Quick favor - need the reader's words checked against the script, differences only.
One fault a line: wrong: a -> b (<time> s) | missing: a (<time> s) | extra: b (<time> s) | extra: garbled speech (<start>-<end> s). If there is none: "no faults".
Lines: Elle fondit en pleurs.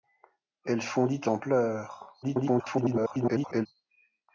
extra: garbled speech (2.2-3.7 s)